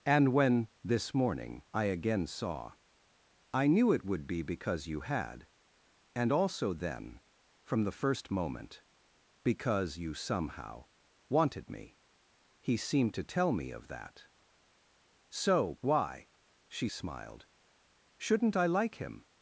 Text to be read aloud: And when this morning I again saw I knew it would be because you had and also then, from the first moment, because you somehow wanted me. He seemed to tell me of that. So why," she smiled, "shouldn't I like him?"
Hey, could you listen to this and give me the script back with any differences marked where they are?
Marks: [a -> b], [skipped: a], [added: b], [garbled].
And when this morning I again saw I knew it would be because you had and also then, from the first moment, because you somehow wanted me. He seemed to tell me of that. So why," she smiled, "shouldn't I like him?"